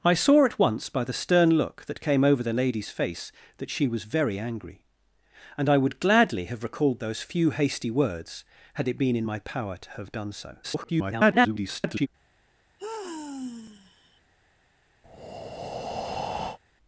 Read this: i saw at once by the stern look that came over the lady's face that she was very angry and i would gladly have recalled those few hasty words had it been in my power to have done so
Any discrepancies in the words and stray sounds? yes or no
yes